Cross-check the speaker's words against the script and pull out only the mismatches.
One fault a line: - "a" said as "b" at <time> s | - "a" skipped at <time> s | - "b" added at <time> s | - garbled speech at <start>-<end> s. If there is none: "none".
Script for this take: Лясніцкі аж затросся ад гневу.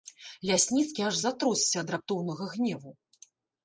- "раптоўнага" added at 2.0 s